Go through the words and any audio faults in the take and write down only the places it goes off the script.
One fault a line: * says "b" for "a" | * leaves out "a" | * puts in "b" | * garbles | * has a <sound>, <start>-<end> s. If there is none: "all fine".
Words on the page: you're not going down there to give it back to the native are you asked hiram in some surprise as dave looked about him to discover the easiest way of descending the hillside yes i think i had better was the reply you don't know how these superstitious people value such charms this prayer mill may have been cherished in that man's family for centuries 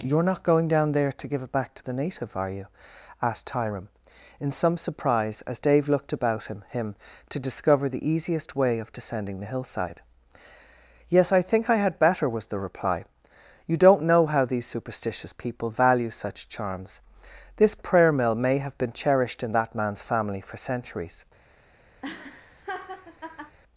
* puts in "him"
* has a laugh, 22.0-23.6 s